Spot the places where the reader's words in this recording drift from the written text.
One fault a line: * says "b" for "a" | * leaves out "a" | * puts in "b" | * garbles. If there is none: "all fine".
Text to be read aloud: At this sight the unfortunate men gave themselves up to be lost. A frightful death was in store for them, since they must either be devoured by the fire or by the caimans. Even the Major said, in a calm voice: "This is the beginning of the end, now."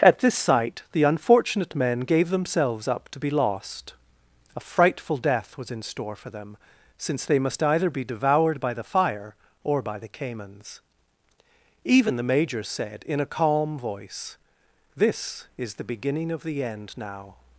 all fine